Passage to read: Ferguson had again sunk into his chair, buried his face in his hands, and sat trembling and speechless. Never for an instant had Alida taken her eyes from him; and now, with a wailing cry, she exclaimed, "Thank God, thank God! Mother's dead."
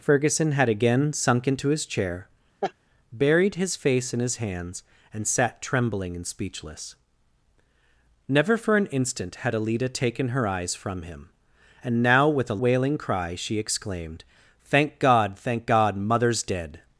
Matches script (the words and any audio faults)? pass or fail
fail